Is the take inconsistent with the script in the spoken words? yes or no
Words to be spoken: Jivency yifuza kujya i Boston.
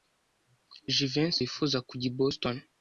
no